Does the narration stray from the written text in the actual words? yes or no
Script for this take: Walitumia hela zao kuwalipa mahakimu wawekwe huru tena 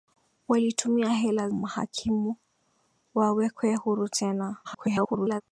yes